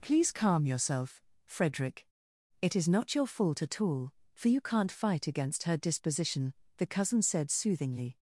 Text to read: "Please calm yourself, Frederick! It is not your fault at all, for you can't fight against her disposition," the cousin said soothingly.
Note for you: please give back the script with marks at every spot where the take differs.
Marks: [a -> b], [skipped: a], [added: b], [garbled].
"Please calm yourself, Frederick! It is not your fault at all, for you can't fight against her disposition," the cousin said soothingly.